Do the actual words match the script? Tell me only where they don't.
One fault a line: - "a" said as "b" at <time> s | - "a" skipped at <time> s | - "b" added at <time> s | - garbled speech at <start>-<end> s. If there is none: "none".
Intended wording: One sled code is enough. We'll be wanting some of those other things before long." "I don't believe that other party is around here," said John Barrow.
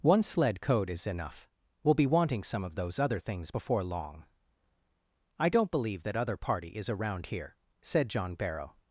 none